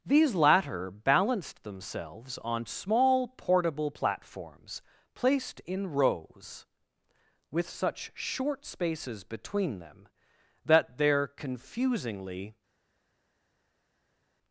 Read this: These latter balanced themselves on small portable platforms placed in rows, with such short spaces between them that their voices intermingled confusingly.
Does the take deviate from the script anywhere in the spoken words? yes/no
yes